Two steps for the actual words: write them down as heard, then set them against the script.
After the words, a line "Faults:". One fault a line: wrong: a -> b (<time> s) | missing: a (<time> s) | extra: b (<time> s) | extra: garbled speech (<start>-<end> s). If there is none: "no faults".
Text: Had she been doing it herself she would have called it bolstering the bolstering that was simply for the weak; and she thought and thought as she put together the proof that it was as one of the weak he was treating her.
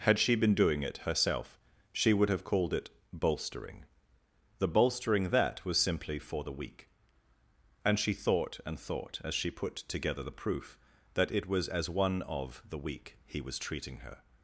Had she been doing it herself she would have called it bolstering the bolstering that was simply for the weak; and she thought and thought as she put together the proof that it was as one of the weak he was treating her.
Faults:
no faults